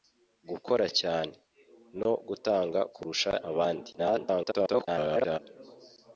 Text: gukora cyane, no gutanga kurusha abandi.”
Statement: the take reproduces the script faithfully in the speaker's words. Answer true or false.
false